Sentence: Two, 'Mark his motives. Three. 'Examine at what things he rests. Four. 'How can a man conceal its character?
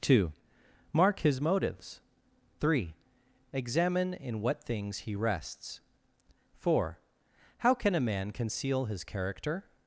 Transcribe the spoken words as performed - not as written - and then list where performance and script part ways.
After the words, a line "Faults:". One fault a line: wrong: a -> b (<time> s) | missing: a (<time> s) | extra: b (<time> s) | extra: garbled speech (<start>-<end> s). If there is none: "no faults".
Two, 'Mark his motives. Three. 'Examine in what things he rests. Four. 'How can a man conceal his character?
Faults:
wrong: at -> in (4.1 s)
wrong: its -> his (8.9 s)